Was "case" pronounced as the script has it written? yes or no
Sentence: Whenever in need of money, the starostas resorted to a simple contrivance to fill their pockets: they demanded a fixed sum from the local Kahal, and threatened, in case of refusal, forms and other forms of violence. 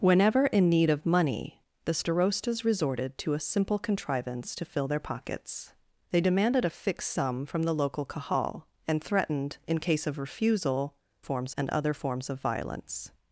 yes